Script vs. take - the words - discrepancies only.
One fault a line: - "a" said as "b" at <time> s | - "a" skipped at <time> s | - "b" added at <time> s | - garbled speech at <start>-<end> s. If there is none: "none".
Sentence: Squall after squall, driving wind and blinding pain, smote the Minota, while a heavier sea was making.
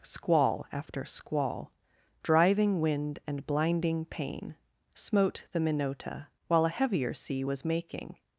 none